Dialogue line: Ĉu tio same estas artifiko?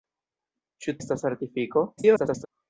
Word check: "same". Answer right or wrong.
wrong